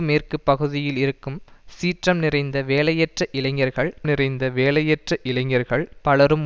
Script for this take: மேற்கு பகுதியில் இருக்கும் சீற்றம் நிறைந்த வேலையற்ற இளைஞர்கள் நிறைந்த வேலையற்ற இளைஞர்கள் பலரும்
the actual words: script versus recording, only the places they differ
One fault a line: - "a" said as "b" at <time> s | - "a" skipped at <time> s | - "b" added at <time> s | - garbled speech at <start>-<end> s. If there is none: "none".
none